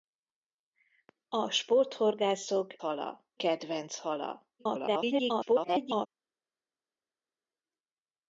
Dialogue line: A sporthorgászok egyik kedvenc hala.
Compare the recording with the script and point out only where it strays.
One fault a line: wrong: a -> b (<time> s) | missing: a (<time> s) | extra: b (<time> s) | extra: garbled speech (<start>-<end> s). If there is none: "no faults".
wrong: egyik -> hala (2.8 s)
extra: garbled speech (4.6-6.1 s)